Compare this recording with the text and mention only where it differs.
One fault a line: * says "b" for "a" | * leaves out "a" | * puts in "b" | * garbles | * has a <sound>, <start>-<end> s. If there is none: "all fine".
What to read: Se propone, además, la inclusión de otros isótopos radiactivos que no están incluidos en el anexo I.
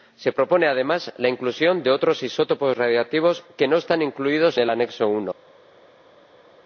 * leaves out "en"